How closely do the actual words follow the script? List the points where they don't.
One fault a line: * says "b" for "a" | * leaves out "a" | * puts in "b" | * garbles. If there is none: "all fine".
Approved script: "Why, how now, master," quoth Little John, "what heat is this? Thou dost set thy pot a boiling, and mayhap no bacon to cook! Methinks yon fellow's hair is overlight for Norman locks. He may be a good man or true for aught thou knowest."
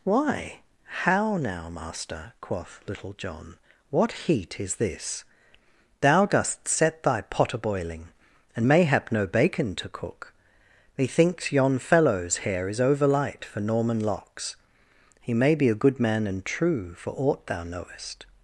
* says "and" for "or"